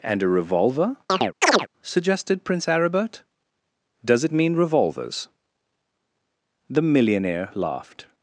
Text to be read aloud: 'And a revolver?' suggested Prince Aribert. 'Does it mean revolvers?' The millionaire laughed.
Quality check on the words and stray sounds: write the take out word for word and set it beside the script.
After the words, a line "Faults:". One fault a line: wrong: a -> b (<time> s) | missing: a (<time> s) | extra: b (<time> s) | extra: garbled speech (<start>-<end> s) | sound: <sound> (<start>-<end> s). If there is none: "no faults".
'And a revolver?' suggested Prince Aribert. 'Does it mean revolvers?' The millionaire laughed.
Faults:
sound: chirp (1.1-1.7 s)